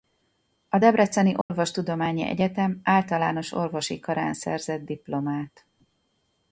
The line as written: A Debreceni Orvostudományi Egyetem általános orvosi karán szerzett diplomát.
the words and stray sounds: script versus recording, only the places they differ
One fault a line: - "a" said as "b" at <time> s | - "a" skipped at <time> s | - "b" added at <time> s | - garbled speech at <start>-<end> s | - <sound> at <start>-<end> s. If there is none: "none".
- dropout at 1.4-1.5 s